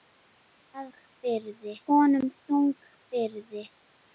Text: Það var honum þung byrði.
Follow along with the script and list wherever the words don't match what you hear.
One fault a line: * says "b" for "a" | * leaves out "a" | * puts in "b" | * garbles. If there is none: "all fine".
* says "byrði" for "var"